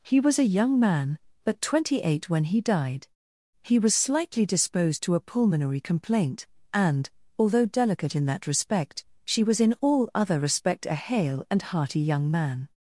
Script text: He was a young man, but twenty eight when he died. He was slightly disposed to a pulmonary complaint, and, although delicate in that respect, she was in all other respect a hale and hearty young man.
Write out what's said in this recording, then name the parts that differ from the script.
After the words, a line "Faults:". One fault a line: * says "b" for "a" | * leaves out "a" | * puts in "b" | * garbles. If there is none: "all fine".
He was a young man, but twenty eight when he died. He was slightly disposed to a pulmonary complaint, and, although delicate in that respect, she was in all other respect a hale and hearty young man.
Faults:
all fine